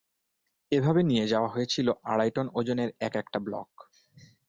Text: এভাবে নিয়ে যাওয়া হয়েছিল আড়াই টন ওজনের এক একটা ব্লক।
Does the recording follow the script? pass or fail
pass